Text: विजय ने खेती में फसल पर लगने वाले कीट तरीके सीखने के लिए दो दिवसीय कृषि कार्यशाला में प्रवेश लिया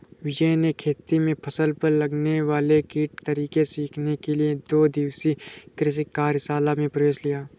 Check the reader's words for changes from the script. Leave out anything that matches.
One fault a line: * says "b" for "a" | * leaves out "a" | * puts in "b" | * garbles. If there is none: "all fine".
all fine